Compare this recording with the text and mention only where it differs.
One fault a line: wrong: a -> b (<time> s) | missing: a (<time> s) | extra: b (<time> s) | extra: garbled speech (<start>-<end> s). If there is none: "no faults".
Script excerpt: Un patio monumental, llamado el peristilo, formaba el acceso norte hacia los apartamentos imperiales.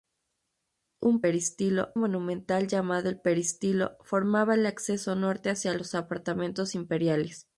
wrong: patio -> peristilo (1.2 s)